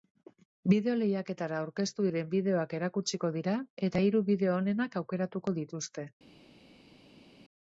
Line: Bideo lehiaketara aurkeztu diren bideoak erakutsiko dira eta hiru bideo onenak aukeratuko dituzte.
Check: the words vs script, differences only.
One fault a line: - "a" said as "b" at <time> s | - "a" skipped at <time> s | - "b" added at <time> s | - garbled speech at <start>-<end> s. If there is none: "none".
none